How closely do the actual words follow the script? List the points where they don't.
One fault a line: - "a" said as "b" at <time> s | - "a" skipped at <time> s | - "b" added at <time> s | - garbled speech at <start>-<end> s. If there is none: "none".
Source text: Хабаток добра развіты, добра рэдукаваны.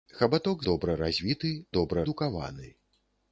none